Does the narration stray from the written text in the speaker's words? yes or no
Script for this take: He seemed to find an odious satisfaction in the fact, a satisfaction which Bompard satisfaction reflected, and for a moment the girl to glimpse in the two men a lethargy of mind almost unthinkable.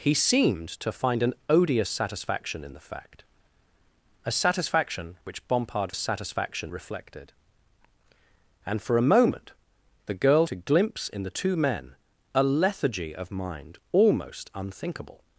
no